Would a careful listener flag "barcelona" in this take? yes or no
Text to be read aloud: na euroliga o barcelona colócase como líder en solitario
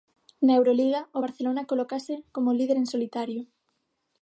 no